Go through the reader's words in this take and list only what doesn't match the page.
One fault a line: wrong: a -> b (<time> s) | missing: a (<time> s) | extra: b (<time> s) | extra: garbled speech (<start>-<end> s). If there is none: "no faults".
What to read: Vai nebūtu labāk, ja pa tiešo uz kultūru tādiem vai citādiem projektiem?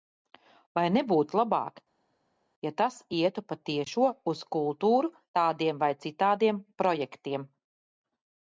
extra: tas ietu (2.8 s)